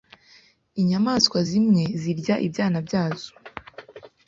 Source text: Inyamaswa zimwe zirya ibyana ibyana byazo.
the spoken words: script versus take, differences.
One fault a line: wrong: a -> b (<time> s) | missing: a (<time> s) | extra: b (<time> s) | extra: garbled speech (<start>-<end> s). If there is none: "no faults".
missing: ibyana (2.8 s)